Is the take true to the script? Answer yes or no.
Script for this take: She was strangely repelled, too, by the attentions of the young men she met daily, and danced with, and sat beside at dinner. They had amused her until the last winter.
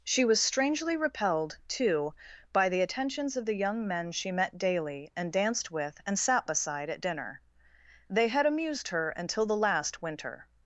yes